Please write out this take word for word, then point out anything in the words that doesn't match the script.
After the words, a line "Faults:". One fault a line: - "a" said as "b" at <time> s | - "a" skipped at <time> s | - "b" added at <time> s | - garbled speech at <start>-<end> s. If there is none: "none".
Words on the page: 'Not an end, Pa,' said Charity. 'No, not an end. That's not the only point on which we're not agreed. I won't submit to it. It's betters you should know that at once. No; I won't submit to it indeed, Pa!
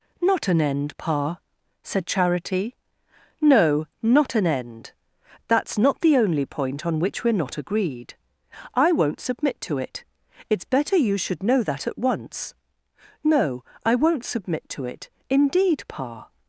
'Not an end, Pa,' said Charity. 'No, not an end. That's not the only point on which we're not agreed. I won't submit to it. It's better you should know that at once. No; I won't submit to it indeed, Pa!
Faults:
- "betters" said as "better" at 10.7 s